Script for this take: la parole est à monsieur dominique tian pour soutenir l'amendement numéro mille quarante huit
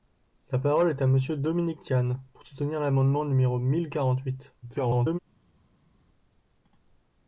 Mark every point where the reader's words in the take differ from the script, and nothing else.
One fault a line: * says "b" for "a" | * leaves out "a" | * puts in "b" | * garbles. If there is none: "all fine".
* garbles